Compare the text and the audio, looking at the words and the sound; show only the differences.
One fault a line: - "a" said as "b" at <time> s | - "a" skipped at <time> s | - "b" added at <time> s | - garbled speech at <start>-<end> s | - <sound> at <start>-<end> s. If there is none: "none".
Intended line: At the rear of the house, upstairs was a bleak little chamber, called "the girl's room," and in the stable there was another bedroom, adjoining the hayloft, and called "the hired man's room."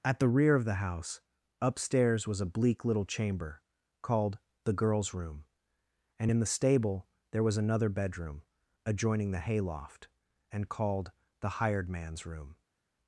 none